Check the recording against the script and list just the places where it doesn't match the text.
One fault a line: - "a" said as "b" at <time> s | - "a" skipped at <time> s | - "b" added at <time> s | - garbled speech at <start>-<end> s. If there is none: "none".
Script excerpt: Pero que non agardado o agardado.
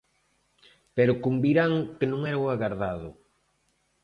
- "convirán" added at 1.2 s
- "agardado" said as "era" at 2.3 s